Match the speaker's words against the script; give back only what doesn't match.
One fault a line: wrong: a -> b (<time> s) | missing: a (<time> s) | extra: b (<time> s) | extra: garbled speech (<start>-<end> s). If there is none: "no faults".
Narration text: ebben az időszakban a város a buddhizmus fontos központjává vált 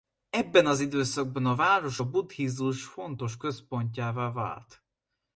no faults